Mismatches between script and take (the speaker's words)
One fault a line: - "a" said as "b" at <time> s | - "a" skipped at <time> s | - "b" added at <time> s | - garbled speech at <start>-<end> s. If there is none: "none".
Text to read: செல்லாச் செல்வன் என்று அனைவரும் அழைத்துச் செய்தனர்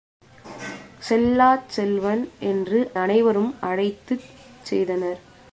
none